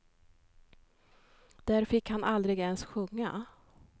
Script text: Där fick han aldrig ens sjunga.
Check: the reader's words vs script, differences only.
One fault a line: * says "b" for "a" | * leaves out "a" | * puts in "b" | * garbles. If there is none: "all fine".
all fine